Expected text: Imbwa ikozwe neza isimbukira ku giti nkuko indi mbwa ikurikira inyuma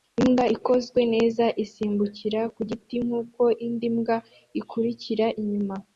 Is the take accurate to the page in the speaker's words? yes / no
yes